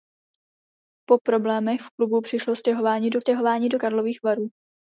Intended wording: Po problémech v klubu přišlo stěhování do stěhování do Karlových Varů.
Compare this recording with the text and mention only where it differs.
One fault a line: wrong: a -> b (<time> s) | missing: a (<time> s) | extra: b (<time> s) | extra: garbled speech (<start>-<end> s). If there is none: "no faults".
no faults